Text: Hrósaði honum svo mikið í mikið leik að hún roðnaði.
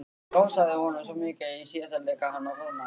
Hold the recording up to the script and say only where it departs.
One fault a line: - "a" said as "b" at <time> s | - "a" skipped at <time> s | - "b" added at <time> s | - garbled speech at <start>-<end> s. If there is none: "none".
- "mikið" said as "síðasta" at 1.7 s
- "hún" said as "hann" at 2.4 s